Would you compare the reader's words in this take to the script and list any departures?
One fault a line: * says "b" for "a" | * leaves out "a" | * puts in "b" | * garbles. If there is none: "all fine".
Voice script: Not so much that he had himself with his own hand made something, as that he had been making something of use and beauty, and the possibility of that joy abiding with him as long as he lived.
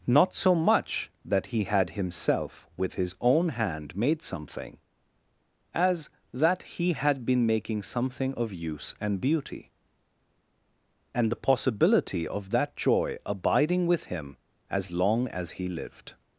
all fine